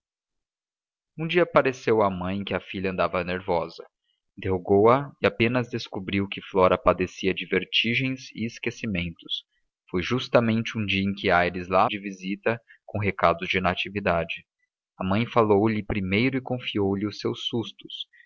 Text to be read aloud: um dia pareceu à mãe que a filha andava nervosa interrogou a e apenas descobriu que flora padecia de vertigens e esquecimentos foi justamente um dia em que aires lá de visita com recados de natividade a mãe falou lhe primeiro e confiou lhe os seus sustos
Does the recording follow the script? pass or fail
pass